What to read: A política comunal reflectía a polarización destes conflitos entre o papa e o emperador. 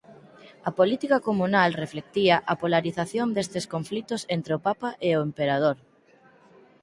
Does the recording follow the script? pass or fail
pass